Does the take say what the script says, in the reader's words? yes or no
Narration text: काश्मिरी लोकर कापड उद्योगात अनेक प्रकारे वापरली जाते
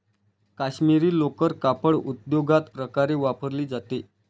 no